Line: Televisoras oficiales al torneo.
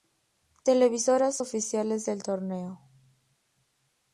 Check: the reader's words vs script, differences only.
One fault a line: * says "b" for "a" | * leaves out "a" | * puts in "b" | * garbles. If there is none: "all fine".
* says "del" for "al"